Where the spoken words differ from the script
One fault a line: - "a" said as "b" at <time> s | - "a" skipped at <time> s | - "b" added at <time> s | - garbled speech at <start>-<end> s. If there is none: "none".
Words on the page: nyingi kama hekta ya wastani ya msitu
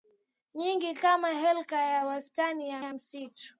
- "ya" added at 2.8 s